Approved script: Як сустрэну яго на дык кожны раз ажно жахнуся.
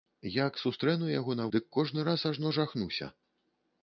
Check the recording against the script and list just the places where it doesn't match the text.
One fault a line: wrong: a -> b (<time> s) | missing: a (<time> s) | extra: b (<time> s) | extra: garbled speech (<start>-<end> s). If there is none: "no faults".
no faults